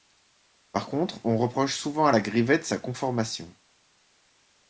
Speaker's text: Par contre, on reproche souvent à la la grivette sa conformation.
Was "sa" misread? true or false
false